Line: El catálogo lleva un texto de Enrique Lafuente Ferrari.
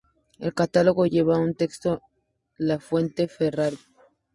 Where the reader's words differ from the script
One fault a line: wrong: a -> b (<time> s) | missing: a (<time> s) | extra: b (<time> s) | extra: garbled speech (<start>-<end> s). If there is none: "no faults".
missing: de Enrique (2.0 s)